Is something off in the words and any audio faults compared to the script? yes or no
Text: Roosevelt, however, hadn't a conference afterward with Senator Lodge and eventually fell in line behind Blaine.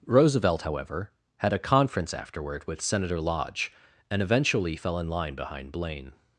yes